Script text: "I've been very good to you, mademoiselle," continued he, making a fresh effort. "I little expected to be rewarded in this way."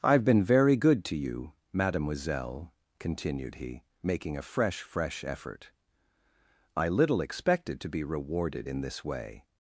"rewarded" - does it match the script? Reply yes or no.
yes